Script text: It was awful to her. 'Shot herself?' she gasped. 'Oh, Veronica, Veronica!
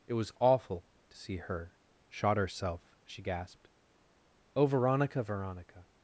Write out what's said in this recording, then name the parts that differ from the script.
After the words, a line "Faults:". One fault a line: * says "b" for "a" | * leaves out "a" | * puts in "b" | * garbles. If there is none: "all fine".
It was awful to see her. 'Shot herself?' she gasped. 'Oh, Veronica, Veronica!
Faults:
* puts in "see"